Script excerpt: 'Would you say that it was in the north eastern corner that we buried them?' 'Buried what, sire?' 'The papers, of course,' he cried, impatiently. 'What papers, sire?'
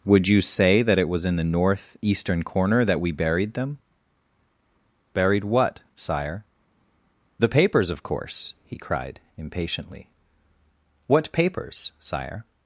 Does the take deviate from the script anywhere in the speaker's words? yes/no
no